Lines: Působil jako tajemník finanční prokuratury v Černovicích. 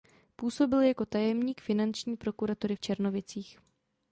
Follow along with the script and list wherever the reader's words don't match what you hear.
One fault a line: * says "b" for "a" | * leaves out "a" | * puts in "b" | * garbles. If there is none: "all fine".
all fine